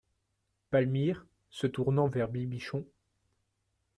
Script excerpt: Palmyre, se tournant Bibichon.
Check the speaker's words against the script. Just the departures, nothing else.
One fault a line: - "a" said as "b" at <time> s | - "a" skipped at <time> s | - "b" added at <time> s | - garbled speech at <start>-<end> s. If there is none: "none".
- "vers" added at 2.0 s